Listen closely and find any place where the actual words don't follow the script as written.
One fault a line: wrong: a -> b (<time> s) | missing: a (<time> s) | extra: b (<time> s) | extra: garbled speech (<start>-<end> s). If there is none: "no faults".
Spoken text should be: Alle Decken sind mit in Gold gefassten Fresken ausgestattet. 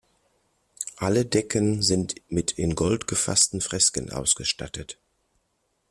no faults